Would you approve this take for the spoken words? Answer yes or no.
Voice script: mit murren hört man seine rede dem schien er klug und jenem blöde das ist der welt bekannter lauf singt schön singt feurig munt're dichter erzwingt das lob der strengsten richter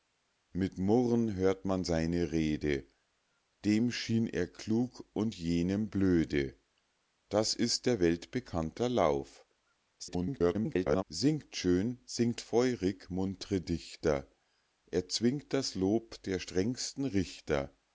no